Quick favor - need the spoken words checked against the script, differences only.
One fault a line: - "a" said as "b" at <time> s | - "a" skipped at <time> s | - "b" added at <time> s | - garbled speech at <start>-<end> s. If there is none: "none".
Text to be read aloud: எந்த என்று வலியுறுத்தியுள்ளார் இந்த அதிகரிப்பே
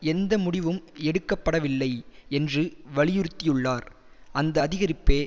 - "முடிவும் எடுக்க படவில்லை" added at 0.4 s
- "இந்த" said as "அந்த" at 4.3 s